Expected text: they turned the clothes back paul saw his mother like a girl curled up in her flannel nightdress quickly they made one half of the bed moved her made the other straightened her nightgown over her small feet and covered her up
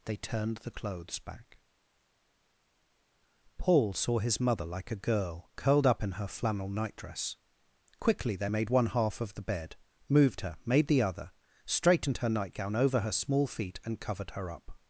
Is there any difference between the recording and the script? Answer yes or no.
no